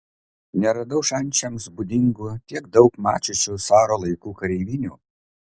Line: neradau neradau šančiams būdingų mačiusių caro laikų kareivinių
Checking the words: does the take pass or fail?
fail